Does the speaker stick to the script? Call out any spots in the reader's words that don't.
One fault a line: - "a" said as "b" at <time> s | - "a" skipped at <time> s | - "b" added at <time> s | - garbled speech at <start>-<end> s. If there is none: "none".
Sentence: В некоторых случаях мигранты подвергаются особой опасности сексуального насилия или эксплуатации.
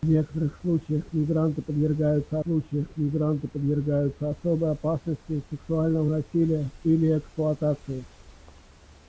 - "случаях мигранты подвергаются" added at 2.4 s